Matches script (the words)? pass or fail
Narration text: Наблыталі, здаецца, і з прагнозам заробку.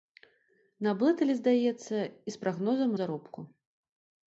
pass